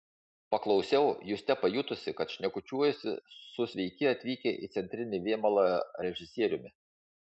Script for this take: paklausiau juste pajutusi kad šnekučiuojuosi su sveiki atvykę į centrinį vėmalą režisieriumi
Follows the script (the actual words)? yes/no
yes